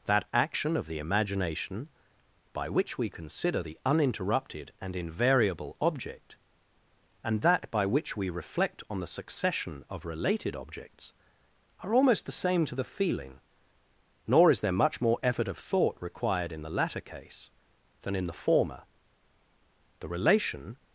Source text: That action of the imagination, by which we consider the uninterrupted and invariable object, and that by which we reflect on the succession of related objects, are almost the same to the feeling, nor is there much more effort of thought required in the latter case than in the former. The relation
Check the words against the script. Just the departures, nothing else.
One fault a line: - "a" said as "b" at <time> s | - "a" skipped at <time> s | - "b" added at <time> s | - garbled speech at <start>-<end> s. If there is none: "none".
none